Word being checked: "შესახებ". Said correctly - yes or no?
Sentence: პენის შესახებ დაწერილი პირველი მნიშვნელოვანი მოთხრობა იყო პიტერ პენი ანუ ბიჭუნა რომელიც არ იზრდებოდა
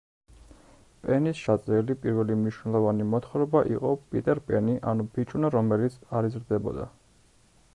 no